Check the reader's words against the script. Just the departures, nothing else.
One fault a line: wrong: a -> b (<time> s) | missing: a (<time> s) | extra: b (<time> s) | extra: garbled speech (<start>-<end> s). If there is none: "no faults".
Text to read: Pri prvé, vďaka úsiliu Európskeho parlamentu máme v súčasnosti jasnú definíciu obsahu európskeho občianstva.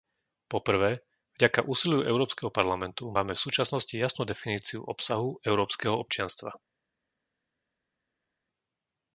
wrong: Pri -> Po (0.5 s)